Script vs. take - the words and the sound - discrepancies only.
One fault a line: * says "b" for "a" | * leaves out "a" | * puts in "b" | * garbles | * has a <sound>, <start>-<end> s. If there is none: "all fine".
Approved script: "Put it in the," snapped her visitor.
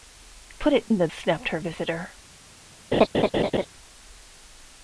* has a laugh, 2.9-3.7 s